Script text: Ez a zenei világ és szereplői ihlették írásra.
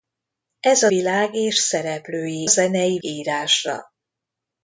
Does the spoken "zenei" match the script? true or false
false